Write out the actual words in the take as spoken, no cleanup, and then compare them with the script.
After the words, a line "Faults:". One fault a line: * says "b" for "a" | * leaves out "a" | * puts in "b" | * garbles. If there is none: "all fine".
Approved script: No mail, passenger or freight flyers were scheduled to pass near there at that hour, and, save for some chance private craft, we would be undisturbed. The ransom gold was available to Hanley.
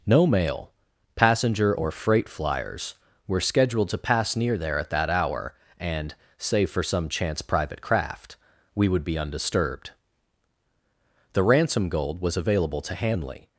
No mail, passenger or freight flyers were scheduled to pass near there at that hour, and, save for some chance private craft, we would be undisturbed. The ransom gold was available to Hanley.
Faults:
all fine